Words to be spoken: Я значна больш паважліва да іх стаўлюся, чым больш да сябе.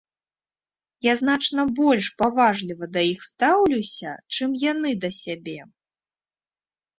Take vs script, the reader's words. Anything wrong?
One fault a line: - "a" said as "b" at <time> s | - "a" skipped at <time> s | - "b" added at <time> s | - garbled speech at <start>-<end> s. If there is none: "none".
- "больш" said as "яны" at 4.7 s